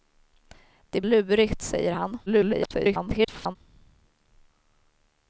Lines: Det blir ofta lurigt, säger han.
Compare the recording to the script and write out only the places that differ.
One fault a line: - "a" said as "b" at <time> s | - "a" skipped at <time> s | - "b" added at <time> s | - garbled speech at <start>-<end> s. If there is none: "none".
- "blir ofta" skipped at 1.0 s
- garbled speech at 2.3-3.6 s